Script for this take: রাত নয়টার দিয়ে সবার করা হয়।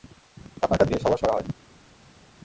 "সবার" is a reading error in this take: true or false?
false